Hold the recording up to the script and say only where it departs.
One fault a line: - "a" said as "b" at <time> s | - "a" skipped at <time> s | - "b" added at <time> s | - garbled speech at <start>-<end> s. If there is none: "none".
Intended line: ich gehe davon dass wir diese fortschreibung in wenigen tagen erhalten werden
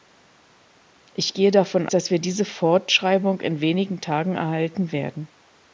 none